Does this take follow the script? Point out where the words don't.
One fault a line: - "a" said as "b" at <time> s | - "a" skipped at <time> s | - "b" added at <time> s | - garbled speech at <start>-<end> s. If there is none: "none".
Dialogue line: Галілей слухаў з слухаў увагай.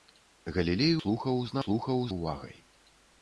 none